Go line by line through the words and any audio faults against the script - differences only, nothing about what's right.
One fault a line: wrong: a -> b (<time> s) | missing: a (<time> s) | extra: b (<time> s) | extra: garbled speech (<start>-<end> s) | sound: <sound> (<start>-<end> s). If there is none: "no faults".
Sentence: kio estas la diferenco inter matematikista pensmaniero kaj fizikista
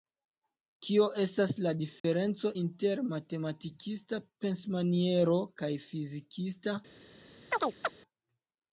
sound: dropout (2.0-2.0 s)
sound: chirp (7.5-8.0 s)